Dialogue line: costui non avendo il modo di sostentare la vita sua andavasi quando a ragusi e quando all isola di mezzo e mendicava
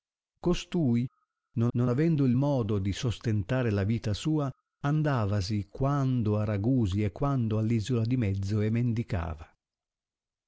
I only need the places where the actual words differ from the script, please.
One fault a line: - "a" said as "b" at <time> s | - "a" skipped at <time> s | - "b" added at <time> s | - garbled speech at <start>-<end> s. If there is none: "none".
- "non" added at 1.8 s